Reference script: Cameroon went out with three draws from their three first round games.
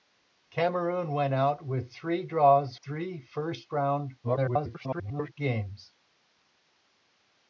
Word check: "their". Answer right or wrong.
wrong